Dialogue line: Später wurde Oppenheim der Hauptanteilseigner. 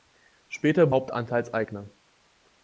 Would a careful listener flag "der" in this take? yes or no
yes